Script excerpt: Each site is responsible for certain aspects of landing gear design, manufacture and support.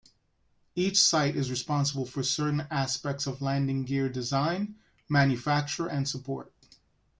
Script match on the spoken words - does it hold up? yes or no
yes